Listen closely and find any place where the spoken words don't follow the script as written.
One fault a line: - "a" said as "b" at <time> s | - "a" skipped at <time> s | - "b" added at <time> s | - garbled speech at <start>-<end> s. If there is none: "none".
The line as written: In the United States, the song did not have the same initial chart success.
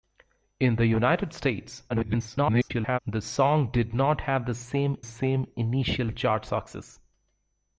- garbled speech at 1.9-3.0 s
- "same" added at 5.0 s